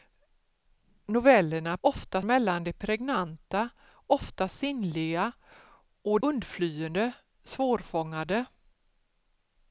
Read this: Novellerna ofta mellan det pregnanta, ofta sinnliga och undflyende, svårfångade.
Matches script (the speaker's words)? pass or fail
pass